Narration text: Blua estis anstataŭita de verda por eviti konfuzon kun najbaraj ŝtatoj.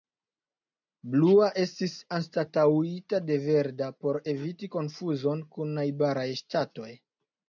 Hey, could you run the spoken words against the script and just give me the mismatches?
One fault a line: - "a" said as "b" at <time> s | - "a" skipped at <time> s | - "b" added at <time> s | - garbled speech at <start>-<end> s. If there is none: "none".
none